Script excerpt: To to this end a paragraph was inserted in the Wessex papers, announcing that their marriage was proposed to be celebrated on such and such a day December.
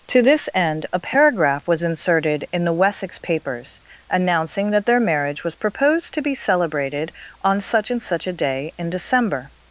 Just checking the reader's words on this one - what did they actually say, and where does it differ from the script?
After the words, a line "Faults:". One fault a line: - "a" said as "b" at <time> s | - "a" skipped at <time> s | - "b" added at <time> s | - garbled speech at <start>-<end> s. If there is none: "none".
To this end a paragraph was inserted in the Wessex papers, announcing that their marriage was proposed to be celebrated on such and such a day in December.
Faults:
- "to" skipped at 0.2 s
- "in" added at 8.8 s